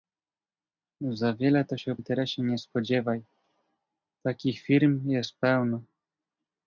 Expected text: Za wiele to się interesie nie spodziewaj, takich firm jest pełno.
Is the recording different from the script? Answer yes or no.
no